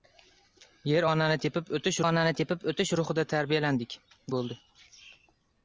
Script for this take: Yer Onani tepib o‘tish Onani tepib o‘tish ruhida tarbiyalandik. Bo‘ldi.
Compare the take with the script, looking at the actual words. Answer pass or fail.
pass